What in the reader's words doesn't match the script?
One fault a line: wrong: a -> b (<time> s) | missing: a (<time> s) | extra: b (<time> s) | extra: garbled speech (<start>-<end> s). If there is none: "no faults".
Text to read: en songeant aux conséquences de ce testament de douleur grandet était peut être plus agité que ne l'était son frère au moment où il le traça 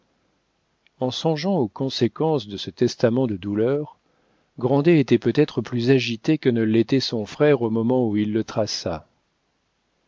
no faults